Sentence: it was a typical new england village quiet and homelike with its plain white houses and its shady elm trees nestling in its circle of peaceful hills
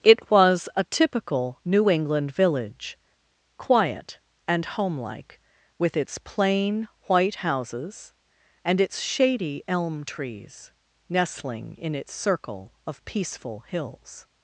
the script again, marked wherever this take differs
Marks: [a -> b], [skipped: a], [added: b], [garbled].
it was a typical new england village quiet and homelike with its plain white houses and its shady elm trees nestling in its circle of peaceful hills